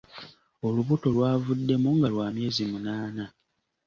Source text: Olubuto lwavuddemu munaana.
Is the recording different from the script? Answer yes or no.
yes